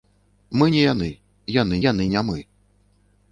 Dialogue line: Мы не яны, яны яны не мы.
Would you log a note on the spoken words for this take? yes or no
no